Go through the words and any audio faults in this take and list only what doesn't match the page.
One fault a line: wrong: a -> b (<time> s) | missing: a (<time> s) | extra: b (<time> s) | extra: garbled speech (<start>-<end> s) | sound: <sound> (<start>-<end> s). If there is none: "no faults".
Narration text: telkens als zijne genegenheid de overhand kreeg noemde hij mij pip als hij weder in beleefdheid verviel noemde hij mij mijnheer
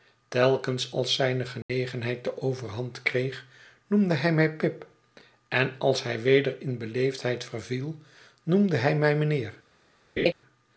sound: dropout (1.6-1.7 s)
extra: en (5.5 s)
sound: laugh (10.2-10.3 s)